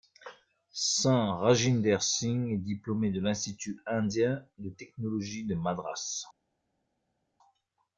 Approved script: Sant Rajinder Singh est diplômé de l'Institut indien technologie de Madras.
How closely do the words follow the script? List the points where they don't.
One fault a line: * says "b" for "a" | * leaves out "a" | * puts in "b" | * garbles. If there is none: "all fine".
* puts in "de"